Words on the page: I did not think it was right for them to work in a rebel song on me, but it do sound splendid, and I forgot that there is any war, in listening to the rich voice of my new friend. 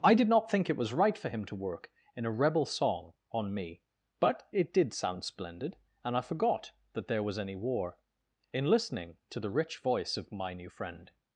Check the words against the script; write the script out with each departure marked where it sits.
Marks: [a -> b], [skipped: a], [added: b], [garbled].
I did not think it was right for [them -> him] to work in a rebel song on me, but it [do -> did] sound splendid, and I forgot that there [is -> was] any war, in listening to the rich voice of my new friend.